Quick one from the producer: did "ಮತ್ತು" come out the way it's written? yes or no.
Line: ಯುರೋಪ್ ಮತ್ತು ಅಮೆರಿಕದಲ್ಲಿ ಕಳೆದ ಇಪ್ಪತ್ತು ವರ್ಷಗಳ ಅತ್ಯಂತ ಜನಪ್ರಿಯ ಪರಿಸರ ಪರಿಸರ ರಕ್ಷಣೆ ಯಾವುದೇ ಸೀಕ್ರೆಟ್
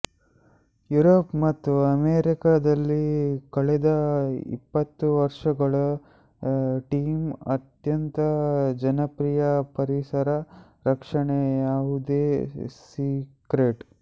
yes